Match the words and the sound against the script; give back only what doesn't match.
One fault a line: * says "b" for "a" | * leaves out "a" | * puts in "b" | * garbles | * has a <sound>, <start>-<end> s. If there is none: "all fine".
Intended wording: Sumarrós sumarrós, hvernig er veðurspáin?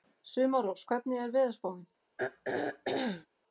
* leaves out "sumarrós"
* has a throat clearing, 2.2-3.3 s